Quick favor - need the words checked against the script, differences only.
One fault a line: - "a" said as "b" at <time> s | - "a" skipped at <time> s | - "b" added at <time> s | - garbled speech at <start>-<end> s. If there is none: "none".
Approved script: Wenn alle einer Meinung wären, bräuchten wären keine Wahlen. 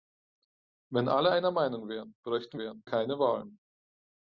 none